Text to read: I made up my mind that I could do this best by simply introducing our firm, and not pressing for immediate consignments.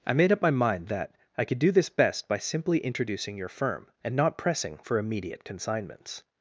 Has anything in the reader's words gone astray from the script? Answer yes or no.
yes